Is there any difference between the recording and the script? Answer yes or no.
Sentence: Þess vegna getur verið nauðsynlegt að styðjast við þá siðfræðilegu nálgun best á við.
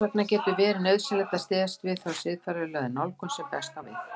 yes